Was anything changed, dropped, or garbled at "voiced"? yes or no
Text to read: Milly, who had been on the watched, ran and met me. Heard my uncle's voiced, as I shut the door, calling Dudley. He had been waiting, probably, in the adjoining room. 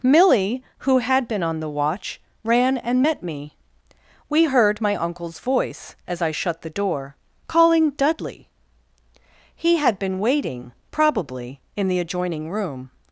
yes